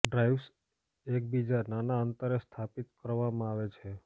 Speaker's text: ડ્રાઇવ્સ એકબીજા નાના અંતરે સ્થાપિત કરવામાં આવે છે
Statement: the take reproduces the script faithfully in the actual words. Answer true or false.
true